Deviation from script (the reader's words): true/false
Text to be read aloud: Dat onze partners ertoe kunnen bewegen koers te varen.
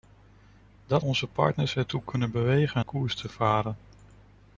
false